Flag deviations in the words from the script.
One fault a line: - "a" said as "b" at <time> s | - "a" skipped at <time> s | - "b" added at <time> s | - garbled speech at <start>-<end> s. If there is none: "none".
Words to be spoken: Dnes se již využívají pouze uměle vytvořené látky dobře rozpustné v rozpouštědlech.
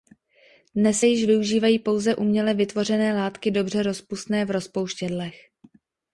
- "se" skipped at 1.0 s